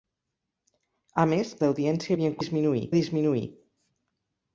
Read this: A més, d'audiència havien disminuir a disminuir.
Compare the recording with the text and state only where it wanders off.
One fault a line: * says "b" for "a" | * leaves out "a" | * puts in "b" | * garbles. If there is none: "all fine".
all fine